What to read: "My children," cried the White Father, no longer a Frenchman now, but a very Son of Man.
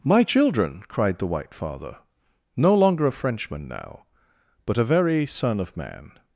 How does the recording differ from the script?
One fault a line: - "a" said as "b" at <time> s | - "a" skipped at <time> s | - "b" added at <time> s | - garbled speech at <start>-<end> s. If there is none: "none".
none